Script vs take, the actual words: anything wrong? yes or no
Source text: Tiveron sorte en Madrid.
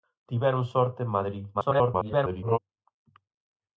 yes